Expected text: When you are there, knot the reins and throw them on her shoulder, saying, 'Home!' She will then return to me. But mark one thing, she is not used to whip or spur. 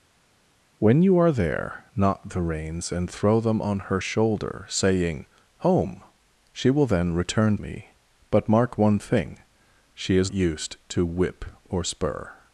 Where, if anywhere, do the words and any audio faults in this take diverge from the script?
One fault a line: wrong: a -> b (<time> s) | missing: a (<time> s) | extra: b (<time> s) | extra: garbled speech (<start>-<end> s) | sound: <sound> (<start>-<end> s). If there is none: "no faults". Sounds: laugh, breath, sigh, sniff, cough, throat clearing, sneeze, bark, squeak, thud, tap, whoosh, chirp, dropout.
missing: to (7.6 s)
missing: not (10.3 s)